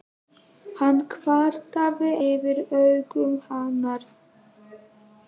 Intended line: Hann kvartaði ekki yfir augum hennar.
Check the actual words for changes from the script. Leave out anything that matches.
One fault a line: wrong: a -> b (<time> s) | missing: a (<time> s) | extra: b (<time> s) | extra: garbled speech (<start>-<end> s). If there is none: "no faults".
missing: ekki (2.1 s)